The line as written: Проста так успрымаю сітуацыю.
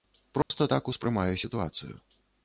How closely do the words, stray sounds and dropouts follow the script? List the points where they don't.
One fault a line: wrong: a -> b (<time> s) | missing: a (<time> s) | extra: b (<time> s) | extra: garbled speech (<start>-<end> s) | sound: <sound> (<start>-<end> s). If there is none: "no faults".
sound: dropout (0.4-0.5 s)